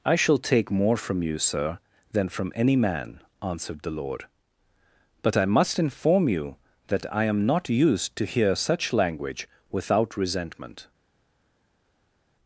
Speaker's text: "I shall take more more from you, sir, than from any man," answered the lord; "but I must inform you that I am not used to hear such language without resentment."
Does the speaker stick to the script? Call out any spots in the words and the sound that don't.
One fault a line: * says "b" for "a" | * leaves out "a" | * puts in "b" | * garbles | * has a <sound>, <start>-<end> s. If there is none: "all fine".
* leaves out "more"